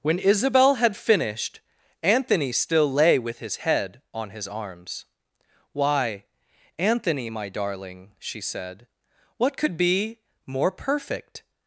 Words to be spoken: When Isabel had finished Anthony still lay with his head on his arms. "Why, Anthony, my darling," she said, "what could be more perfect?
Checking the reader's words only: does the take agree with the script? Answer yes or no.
yes